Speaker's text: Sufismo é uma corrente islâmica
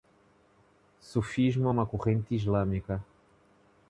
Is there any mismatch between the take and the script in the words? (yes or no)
no